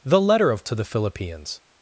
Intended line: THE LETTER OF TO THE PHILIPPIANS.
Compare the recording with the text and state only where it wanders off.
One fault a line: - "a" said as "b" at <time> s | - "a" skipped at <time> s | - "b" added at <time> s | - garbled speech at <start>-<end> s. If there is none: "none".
none